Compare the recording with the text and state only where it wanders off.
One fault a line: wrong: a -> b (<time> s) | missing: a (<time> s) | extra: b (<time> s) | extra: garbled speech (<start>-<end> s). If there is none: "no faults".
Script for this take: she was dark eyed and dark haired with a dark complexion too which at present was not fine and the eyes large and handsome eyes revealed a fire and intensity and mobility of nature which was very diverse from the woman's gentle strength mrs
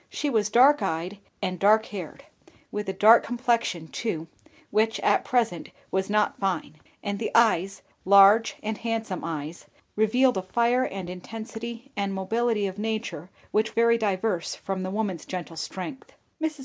missing: was (13.7 s)